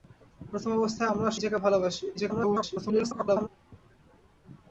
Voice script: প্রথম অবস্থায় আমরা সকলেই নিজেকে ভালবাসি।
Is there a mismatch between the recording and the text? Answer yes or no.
yes